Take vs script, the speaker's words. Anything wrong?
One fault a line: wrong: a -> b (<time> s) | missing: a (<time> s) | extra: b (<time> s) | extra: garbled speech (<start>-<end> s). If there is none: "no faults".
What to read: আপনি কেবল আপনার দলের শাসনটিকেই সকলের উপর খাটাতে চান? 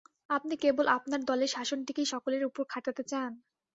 no faults